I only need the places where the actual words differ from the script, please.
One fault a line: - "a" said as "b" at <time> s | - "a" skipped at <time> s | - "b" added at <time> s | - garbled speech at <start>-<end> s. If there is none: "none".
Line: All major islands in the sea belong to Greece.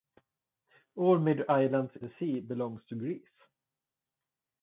- "in" skipped at 1.9 s